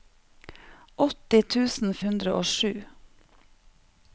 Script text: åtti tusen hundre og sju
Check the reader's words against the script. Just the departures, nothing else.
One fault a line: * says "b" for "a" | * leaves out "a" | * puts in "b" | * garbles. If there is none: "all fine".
all fine